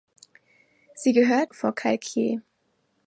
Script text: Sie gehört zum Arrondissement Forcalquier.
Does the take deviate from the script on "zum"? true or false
true